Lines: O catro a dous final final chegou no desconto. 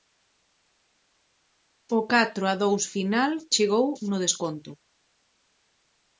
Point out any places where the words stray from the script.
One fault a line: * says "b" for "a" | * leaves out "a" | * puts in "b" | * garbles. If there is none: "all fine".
* leaves out "final"